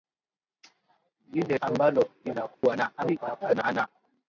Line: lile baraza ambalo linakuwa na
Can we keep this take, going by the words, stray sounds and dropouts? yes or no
no